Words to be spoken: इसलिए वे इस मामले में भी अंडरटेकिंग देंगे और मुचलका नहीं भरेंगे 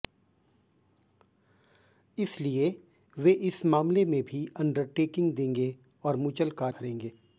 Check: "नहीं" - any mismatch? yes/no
yes